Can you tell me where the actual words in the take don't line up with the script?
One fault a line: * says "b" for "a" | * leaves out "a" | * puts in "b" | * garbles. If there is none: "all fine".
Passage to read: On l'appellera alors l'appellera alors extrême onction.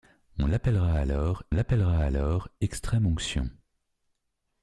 all fine